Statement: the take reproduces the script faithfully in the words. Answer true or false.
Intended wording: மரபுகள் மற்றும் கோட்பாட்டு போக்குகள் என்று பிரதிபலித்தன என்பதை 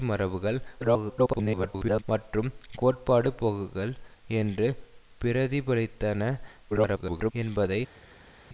false